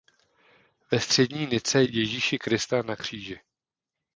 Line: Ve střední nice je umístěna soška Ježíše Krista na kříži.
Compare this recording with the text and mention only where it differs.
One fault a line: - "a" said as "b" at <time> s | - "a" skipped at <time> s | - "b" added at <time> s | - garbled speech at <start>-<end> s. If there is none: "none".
- "je umístěna soška" skipped at 1.8 s